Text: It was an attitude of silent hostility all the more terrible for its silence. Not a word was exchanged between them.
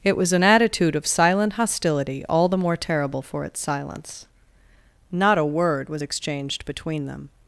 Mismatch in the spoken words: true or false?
false